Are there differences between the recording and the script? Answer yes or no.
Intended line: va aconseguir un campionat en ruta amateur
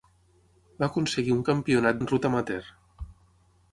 no